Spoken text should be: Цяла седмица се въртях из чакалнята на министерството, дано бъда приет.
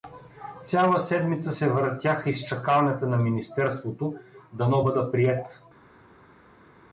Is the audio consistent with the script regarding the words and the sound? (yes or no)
yes